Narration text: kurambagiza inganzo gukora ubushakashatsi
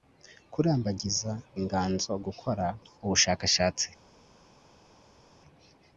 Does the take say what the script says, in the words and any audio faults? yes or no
yes